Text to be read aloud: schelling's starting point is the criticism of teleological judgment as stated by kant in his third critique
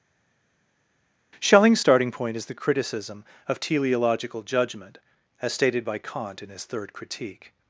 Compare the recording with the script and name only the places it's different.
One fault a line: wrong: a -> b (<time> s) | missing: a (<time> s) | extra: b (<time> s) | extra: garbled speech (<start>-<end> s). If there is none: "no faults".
no faults